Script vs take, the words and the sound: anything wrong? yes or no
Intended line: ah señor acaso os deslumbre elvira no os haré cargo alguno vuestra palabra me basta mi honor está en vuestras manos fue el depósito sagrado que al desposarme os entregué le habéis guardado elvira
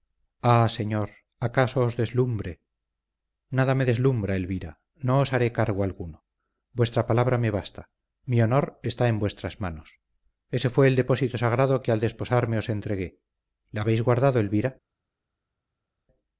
yes